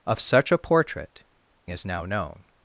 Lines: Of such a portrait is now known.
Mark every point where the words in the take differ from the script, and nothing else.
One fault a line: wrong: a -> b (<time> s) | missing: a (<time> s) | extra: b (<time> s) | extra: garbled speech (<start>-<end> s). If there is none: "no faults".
no faults